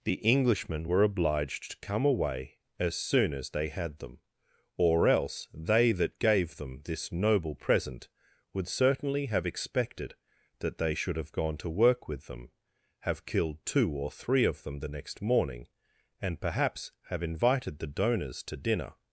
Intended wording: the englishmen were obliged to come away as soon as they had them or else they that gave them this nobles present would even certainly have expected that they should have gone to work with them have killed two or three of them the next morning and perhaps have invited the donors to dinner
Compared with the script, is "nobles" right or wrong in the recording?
wrong